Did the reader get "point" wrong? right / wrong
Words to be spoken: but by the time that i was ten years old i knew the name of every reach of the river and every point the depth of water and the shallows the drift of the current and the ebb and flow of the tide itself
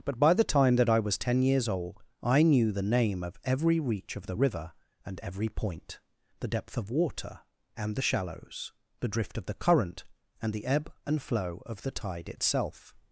right